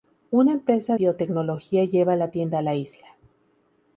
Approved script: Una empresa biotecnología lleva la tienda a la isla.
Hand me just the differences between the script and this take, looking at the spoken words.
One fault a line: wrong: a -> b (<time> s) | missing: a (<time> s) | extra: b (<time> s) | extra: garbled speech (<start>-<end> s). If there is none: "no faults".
no faults